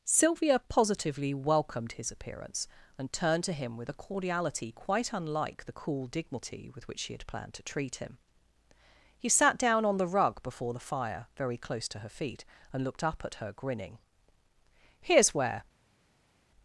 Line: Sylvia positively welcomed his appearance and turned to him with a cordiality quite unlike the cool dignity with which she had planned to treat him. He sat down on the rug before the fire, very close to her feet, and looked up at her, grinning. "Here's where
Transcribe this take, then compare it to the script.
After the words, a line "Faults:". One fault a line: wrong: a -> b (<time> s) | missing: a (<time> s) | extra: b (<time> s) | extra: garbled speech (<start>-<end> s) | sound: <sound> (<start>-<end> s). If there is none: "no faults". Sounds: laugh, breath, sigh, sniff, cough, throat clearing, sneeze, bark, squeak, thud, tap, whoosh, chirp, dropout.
Sylvia positively welcomed his appearance and turned to him with a cordiality quite unlike the cool dignity with which she had planned to treat him. He sat down on the rug before the fire, very close to her feet, and looked up at her, grinning. "Here's where
Faults:
no faults